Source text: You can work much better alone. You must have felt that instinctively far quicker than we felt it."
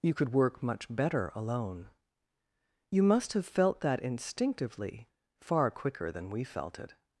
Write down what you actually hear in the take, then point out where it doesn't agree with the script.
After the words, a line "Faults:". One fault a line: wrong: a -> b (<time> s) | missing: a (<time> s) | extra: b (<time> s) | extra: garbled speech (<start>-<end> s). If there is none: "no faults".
You could work much better alone. You must have felt that instinctively far quicker than we felt it."
Faults:
wrong: can -> could (0.1 s)